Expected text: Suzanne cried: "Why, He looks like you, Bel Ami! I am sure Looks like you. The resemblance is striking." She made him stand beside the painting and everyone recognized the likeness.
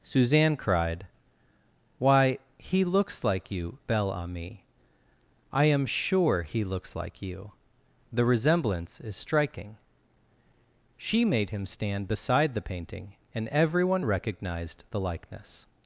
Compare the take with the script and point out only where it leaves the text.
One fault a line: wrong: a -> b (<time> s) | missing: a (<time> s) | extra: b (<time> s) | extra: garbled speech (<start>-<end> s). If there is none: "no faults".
extra: He (6.4 s)